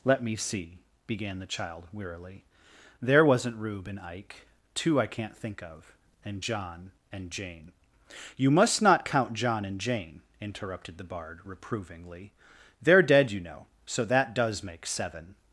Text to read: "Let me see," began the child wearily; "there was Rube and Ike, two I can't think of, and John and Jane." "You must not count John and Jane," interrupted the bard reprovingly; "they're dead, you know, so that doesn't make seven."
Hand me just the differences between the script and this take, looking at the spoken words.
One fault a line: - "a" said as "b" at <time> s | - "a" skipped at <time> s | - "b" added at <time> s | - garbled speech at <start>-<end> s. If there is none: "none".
- "was" said as "wasn't" at 3.2 s
- "doesn't" said as "does" at 14.3 s